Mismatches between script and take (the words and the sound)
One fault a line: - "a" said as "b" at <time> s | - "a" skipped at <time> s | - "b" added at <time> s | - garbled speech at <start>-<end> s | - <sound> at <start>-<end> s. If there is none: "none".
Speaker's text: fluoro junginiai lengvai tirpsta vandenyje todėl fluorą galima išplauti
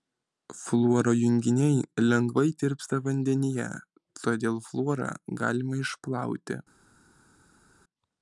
none